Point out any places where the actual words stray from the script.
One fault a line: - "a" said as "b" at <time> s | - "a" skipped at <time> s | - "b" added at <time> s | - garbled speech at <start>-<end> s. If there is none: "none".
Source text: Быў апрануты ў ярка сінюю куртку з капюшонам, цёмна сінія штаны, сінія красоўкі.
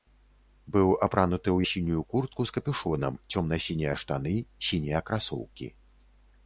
- "ярка" skipped at 1.6 s